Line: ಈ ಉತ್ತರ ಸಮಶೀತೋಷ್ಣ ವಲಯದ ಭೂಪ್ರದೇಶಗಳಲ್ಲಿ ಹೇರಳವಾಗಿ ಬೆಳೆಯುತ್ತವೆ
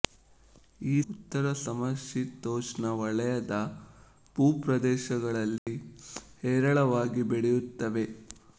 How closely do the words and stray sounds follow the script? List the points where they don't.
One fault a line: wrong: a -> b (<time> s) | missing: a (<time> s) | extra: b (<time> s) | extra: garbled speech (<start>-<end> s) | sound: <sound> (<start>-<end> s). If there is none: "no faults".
sound: dropout (5.6-5.7 s)